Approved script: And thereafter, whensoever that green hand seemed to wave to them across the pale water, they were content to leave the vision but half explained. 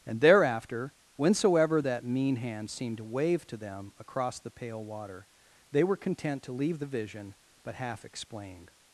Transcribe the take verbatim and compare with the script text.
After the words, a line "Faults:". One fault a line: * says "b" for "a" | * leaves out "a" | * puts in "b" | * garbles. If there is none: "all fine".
And thereafter, whensoever that mean hand seemed to wave to them across the pale water, they were content to leave the vision but half explained.
Faults:
* says "mean" for "green"